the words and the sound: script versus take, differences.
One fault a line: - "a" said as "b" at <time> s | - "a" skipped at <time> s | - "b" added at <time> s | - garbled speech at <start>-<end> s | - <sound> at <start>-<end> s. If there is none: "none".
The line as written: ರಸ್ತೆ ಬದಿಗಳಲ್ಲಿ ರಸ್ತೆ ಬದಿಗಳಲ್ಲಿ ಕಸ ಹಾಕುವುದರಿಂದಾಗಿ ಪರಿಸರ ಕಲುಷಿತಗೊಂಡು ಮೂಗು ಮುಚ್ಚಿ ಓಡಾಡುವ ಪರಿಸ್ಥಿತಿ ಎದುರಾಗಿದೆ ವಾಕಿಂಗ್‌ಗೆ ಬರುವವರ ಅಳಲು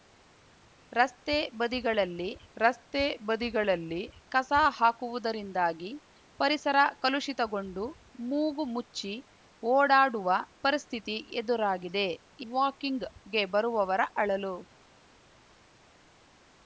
none